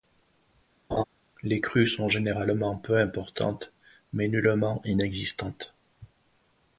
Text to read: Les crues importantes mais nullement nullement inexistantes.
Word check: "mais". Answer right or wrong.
right